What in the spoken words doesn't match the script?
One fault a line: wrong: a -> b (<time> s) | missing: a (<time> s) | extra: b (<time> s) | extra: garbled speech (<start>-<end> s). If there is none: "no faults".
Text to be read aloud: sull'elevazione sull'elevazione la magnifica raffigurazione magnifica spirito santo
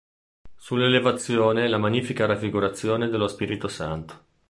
missing: sull'elevazione (1.7 s)
wrong: magnifica -> dello (3.1 s)